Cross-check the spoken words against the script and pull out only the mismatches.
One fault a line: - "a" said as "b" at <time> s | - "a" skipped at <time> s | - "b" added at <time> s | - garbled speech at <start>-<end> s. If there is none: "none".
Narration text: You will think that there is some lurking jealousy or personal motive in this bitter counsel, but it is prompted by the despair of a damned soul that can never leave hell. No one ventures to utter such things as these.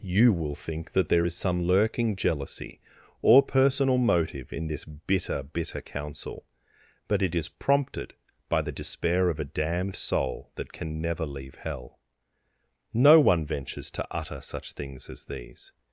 - "bitter" added at 5.4 s